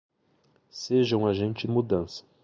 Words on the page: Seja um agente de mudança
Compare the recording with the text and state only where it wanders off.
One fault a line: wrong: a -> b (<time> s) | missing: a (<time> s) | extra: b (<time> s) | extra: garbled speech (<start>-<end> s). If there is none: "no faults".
missing: de (1.7 s)